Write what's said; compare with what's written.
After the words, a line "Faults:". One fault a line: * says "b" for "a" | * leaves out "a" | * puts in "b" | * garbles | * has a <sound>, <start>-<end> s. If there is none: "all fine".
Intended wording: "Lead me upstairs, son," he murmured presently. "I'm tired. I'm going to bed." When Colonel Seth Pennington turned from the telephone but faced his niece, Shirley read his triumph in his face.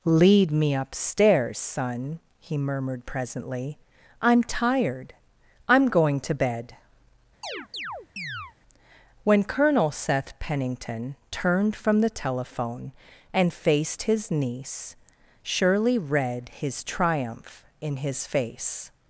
"Lead me upstairs, son," he murmured presently. "I'm tired. I'm going to bed." When Colonel Seth Pennington turned from the telephone and faced his niece, Shirley read his triumph in his face.
Faults:
* has a chirp, 7.4-8.5 s
* says "and" for "but"